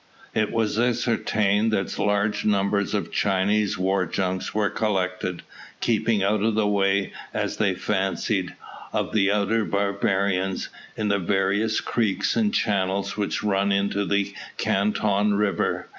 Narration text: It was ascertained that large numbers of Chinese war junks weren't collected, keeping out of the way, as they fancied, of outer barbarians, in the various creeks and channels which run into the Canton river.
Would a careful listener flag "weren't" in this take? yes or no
yes